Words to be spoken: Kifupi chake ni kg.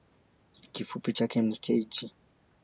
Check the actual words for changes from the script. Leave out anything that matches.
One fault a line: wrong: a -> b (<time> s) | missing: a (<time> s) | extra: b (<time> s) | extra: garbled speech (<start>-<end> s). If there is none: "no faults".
no faults